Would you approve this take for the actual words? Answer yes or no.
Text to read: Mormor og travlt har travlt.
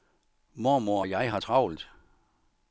no